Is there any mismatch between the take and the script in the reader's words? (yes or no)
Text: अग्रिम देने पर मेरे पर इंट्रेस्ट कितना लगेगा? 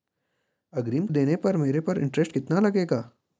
no